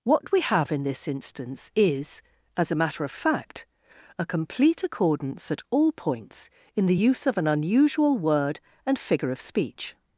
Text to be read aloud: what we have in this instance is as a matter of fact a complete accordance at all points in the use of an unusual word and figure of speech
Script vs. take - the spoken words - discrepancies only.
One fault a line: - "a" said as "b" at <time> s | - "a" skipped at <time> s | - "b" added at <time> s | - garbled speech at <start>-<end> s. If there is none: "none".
none